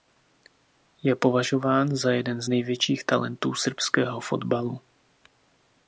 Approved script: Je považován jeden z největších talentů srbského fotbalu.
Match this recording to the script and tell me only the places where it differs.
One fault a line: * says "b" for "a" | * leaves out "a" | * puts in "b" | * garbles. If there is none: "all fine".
* puts in "za"